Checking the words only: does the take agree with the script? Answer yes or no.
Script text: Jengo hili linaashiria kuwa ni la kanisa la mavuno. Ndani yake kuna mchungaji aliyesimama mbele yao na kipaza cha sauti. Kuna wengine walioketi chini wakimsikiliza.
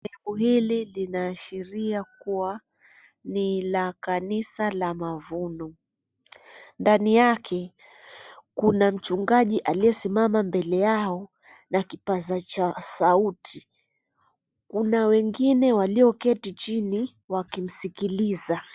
yes